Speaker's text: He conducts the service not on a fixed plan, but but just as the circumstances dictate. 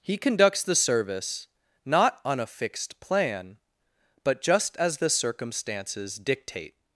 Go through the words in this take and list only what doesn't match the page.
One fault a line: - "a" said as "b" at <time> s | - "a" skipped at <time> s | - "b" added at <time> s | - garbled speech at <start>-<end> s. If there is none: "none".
- "but" skipped at 4.4 s